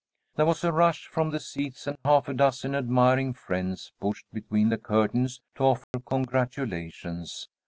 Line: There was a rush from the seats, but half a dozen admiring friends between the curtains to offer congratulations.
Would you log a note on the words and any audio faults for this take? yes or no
yes